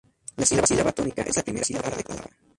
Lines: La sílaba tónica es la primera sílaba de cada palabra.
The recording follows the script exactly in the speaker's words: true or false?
true